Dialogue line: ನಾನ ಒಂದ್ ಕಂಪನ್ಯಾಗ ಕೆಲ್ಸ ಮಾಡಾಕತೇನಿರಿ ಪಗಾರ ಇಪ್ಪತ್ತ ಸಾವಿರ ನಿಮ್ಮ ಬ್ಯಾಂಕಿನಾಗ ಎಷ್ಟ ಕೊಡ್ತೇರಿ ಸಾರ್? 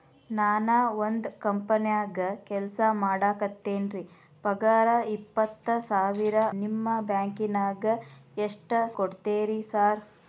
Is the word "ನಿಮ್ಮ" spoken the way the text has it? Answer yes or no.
yes